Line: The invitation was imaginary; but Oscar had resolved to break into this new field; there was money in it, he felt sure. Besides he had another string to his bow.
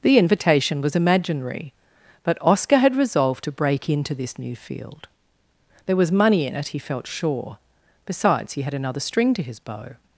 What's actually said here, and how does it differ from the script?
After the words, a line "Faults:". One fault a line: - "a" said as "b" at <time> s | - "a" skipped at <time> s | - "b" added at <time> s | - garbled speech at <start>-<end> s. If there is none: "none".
The invitation was imaginary; but Oscar had resolved to break into this new field; there was money in it, he felt sure. Besides he had another string to his bow.
Faults:
none